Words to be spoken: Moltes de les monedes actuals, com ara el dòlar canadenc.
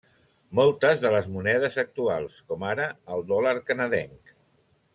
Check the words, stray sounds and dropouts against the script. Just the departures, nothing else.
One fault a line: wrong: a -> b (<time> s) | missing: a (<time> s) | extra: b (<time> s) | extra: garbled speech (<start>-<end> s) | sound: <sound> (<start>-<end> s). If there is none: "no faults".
no faults